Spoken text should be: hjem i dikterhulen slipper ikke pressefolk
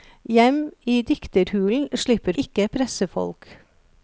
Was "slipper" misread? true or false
false